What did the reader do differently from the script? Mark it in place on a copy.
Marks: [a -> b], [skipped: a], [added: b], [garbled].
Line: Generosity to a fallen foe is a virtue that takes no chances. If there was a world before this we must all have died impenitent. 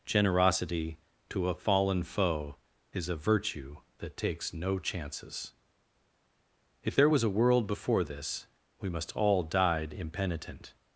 Generosity to a fallen foe is a virtue that takes no chances. If there was a world before this we must all [skipped: have] died impenitent.